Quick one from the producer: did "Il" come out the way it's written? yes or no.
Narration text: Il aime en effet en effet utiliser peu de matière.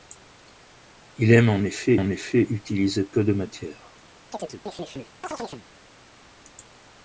yes